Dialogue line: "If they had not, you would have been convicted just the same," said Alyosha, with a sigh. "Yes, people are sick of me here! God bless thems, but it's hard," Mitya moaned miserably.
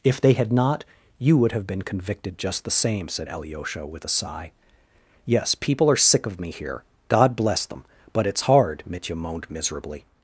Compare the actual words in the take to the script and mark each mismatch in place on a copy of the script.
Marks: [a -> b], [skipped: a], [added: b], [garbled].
"If they had not, you would have been convicted just the same," said Alyosha, with a sigh. "Yes, people are sick of me here! God bless [thems, -> them] but it's hard," Mitya moaned miserably.